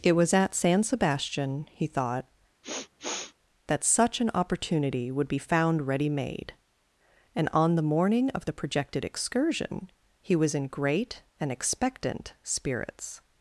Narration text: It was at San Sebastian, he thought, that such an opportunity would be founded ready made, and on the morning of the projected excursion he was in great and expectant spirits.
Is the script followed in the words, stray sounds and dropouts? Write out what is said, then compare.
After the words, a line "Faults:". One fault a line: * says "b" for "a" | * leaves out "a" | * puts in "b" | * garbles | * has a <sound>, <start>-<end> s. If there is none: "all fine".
It was at San Sebastian, he thought, that such an opportunity would be found ready made, and on the morning of the projected excursion he was in great and expectant spirits.
Faults:
* has a sniff, 2.6-3.3 s
* says "found" for "founded"